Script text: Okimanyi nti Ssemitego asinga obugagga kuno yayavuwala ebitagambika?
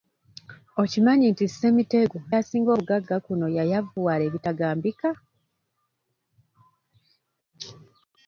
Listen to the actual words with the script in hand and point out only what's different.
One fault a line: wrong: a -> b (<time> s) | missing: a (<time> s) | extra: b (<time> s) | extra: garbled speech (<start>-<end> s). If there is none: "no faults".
no faults